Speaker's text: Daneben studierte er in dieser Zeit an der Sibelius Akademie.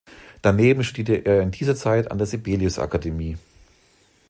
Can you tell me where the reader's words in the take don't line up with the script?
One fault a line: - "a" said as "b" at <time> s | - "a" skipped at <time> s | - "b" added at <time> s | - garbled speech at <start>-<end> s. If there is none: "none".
none